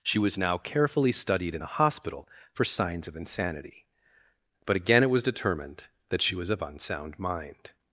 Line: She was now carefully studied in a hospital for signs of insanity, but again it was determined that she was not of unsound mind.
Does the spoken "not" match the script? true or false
false